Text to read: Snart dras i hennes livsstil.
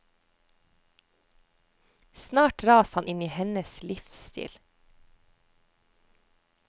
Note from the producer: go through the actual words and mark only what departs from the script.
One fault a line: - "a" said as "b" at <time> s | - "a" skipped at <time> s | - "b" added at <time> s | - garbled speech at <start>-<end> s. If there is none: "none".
- "han inn" added at 2.9 s